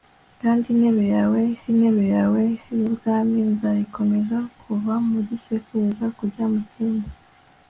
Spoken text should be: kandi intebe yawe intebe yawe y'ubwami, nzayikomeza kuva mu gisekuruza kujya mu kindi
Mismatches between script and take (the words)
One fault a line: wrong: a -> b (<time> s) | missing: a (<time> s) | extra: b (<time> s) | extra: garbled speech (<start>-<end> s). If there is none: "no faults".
no faults